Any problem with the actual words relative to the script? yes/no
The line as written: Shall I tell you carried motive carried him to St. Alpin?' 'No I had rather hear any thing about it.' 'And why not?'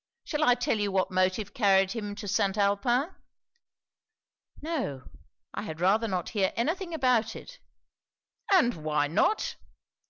yes